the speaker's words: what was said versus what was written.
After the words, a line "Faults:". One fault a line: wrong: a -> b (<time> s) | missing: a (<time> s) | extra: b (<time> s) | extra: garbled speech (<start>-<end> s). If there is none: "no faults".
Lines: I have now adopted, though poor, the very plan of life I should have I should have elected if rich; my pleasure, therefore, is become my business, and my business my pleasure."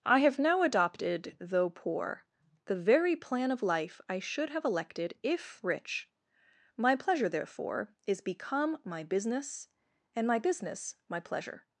I have now adopted, though poor, the very plan of life I should have elected if rich; my pleasure, therefore, is become my business, and my business my pleasure."
Faults:
missing: I should have (4.7 s)